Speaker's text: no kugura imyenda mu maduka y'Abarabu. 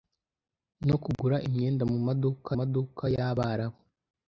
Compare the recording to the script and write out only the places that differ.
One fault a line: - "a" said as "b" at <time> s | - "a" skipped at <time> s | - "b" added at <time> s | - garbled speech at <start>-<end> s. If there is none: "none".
- "maduka" added at 2.6 s